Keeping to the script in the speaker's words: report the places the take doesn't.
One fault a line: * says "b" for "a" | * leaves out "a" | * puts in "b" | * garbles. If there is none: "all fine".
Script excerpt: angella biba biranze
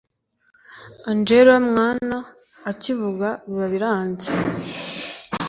* puts in "mwana akivuga"